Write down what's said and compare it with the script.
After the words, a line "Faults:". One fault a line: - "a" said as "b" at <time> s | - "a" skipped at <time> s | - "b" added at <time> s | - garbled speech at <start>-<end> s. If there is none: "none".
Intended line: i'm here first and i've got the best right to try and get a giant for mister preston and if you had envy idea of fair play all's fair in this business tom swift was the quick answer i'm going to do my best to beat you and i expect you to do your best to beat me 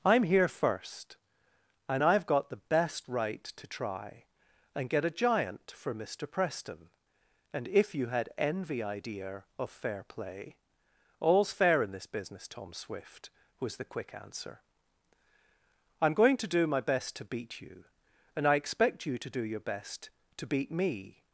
i'm here first and i've got the best right to try and get a giant for mister preston and if you had envy idea of fair play all's fair in this business tom swift was the quick answer i'm going to do my best to beat you and i expect you to do your best to beat me
Faults:
none